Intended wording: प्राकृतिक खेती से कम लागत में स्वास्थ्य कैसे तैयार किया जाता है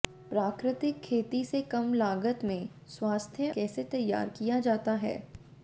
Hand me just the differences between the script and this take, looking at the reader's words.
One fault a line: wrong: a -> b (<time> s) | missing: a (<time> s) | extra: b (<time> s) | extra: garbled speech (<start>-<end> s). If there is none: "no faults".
no faults